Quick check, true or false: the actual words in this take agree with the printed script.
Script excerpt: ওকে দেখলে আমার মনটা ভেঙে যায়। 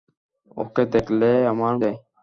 false